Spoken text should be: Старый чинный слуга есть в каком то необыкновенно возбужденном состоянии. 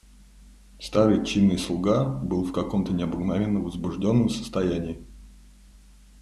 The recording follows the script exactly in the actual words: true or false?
false